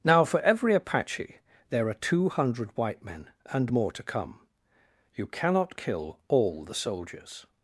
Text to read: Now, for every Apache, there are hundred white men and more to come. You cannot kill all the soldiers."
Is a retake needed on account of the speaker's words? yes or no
yes